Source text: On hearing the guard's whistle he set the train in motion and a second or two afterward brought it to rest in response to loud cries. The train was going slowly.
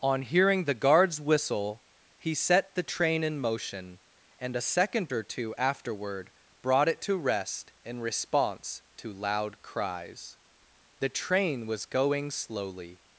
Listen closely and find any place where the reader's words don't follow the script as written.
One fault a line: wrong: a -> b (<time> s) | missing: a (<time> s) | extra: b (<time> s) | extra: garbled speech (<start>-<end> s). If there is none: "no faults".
no faults